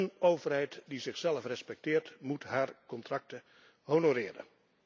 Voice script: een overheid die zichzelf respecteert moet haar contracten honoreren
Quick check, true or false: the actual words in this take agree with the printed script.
true